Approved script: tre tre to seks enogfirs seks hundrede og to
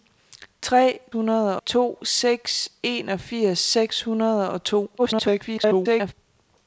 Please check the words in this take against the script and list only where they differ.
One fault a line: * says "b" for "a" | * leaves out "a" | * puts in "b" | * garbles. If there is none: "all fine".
* says "hundrede" for "tre"
* garbles